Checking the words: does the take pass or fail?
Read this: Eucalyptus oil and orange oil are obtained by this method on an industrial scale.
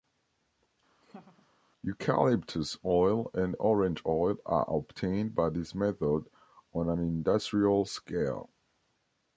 pass